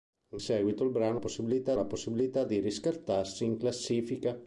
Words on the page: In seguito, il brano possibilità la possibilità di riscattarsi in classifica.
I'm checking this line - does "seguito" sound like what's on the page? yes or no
yes